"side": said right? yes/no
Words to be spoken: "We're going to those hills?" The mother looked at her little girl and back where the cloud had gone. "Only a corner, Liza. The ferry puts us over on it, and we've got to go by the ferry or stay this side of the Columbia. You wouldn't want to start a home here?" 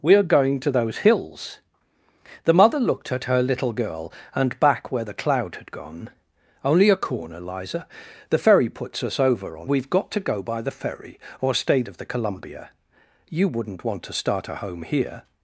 no